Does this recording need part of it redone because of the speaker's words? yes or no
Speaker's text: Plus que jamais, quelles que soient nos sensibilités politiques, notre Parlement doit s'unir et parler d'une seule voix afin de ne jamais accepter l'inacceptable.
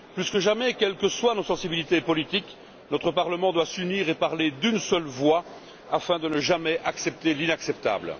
no